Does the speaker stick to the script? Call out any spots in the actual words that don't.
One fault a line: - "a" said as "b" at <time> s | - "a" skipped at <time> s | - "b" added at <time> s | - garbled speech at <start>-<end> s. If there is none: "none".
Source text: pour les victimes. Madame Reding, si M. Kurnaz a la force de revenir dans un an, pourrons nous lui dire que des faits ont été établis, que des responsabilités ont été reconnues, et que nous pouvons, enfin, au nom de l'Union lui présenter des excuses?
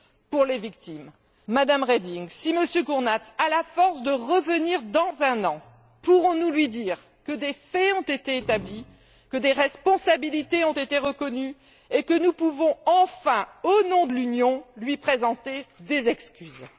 none